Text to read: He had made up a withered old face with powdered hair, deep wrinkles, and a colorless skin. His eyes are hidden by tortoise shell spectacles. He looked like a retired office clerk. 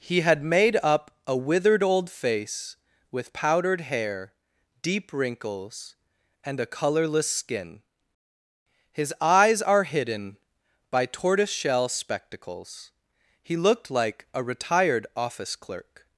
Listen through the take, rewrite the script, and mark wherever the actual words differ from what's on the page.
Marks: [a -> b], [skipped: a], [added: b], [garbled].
He had made up a withered old face with powdered hair, deep wrinkles, and a colorless skin. His eyes are hidden by tortoise shell spectacles. He looked like a retired office clerk.